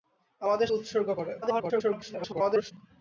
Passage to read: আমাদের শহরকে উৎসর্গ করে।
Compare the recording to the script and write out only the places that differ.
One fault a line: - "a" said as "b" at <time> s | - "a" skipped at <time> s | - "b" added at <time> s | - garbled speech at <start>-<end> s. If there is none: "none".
- "শহরকে" skipped at 0.7 s
- garbled speech at 1.4-2.7 s